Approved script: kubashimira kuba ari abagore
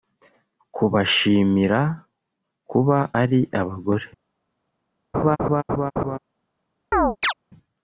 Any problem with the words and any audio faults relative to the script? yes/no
yes